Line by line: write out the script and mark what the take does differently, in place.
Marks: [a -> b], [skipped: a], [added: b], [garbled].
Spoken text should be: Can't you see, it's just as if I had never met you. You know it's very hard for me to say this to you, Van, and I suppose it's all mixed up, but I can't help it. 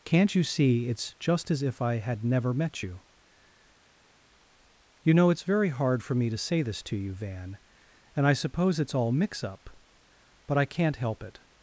Can't you see, it's just as if I had never met you. You know it's very hard for me to say this to you, Van, and I suppose it's all [mixed -> mix] up, but I can't help it.